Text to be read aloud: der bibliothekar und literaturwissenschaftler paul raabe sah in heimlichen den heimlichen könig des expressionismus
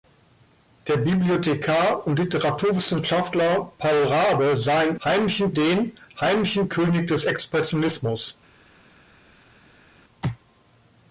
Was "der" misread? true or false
false